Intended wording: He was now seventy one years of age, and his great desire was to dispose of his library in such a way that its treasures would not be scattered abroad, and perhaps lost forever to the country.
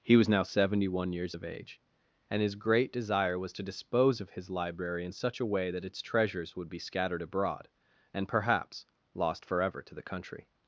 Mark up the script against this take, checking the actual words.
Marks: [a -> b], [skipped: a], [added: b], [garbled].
He was now seventy one years of age, and his great desire was to dispose of his library in such a way that its treasures would [skipped: not] be scattered abroad, and perhaps lost forever to the country.